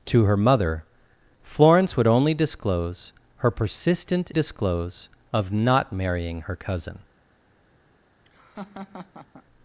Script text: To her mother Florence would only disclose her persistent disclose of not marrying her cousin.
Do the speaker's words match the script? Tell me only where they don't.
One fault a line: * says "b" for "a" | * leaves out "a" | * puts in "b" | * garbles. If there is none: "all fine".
all fine